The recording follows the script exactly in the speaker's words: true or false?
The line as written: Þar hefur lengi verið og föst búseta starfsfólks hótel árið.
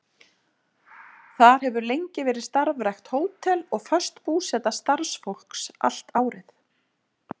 false